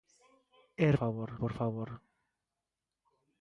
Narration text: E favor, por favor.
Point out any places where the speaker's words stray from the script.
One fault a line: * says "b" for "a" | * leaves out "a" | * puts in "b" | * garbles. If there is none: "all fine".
all fine